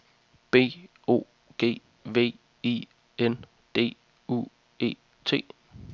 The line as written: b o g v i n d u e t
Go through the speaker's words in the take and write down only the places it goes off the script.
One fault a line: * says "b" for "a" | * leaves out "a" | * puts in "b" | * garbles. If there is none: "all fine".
all fine